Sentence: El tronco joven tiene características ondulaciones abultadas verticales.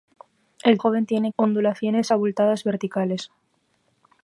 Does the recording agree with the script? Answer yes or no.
no